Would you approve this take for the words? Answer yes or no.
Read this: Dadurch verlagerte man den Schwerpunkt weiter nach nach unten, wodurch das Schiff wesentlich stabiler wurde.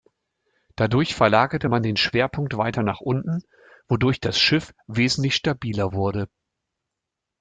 no